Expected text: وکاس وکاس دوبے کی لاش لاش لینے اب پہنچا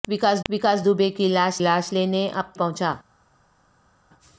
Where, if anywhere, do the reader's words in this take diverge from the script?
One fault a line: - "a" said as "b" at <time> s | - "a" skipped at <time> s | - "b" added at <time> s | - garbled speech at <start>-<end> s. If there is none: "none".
none